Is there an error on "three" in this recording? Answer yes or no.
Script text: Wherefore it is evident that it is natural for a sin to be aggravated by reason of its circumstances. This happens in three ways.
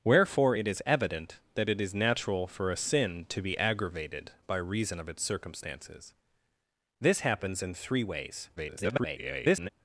no